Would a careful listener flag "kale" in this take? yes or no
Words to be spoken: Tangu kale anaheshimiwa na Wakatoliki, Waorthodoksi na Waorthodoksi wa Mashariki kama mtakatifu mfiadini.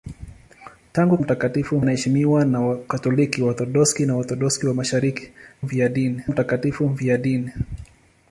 yes